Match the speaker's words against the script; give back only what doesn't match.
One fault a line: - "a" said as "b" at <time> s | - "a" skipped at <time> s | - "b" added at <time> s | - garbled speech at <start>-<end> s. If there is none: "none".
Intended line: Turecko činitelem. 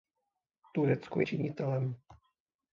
none